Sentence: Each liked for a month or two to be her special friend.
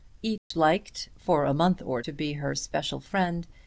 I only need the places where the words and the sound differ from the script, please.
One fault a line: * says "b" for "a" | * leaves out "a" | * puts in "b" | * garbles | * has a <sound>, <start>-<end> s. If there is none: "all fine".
* has a dropout, 0.4-0.5 s
* leaves out "two"